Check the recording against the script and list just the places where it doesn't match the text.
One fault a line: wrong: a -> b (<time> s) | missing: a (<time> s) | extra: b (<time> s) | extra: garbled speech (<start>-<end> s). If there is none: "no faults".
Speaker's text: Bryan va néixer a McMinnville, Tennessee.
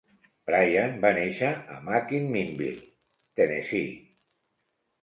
no faults